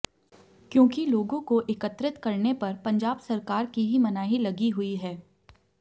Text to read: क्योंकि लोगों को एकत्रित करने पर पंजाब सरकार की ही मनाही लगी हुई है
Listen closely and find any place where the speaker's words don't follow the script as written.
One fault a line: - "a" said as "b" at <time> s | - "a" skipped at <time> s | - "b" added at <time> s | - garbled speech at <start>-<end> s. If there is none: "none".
none